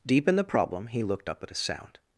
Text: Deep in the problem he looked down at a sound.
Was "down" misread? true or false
true